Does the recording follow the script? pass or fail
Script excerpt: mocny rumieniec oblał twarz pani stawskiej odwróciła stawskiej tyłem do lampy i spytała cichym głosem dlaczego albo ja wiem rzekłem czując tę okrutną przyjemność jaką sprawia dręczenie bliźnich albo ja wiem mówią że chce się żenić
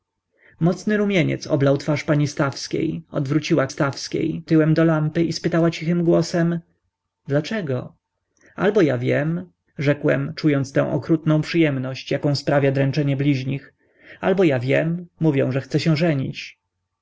pass